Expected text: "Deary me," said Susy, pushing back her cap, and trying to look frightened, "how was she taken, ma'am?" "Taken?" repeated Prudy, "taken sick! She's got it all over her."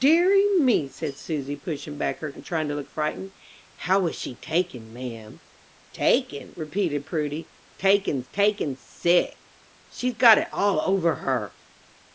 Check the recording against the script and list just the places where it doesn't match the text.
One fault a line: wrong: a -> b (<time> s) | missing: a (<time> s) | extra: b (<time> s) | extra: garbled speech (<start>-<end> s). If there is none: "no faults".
missing: cap (2.3 s)
extra: taken (8.3 s)